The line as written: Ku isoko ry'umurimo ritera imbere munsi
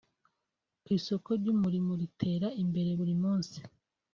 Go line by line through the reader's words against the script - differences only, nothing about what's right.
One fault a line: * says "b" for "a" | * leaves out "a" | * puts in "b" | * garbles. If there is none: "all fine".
* puts in "buri"